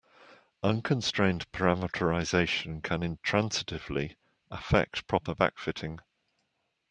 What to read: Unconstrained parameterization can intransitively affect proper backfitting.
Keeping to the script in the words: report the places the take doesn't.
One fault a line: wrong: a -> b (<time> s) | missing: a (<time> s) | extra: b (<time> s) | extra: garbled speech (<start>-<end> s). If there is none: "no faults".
no faults